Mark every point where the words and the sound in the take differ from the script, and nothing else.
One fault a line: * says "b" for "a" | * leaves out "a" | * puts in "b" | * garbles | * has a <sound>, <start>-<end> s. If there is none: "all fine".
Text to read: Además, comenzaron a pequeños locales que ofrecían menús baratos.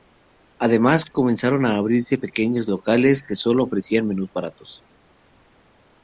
* puts in "abrirse"
* puts in "sólo"